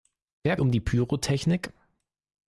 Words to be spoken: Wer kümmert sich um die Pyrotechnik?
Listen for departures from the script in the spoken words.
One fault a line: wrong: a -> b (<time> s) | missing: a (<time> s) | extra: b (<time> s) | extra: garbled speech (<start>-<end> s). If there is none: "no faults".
missing: kümmert sich (0.6 s)